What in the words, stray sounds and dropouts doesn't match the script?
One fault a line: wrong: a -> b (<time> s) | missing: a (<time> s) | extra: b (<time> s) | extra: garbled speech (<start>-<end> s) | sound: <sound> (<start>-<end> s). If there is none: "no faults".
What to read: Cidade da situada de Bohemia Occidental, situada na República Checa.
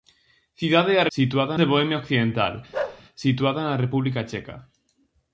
sound: bark (2.7-3.0 s)